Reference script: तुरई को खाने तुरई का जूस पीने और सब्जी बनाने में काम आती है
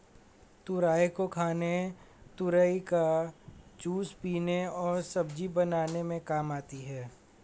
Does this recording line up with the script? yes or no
yes